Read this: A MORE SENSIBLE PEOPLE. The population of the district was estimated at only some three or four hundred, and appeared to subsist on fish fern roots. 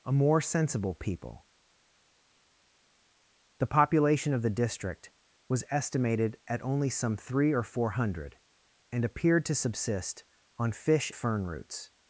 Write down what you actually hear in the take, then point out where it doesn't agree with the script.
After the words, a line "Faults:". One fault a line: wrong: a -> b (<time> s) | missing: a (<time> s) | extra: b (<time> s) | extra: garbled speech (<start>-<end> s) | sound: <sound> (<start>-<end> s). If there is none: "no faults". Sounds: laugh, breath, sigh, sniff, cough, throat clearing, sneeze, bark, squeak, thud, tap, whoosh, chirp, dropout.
A MORE SENSIBLE PEOPLE. The population of the district was estimated at only some three or four hundred, and appeared to subsist on fish fern roots.
Faults:
no faults